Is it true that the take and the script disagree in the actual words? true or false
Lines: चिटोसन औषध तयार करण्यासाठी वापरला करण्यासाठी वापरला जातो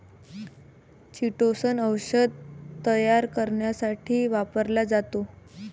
true